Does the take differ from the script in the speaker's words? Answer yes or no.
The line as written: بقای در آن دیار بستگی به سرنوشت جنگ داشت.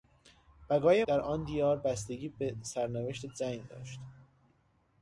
no